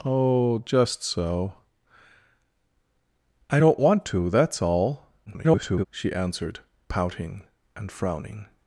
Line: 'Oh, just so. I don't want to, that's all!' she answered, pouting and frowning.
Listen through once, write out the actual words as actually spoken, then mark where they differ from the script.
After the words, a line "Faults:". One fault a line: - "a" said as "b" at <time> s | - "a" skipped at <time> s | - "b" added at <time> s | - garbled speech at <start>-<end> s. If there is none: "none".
'Oh, just so. I don't want to, that's all!' [garbled] she answered, pouting and frowning.
Faults:
- garbled speech at 5.3-5.9 s